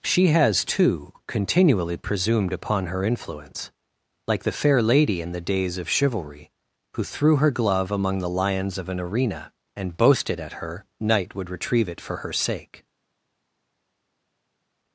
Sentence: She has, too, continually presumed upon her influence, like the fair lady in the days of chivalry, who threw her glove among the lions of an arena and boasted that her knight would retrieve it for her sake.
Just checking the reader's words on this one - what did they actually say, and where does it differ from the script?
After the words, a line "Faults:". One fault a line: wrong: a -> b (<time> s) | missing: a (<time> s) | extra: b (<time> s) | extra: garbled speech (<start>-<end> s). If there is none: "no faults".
She has, too, continually presumed upon her influence, like the fair lady in the days of chivalry, who threw her glove among the lions of an arena and boasted at her knight would retrieve it for her sake.
Faults:
wrong: that -> at (10.4 s)